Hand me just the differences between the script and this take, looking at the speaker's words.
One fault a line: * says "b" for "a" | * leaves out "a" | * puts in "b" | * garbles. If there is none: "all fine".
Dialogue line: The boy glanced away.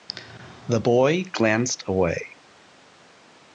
all fine